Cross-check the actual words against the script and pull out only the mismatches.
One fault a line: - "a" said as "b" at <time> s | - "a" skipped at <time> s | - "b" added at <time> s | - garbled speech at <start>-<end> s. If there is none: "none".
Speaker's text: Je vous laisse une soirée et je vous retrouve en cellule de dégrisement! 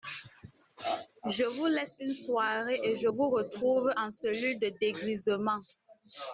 none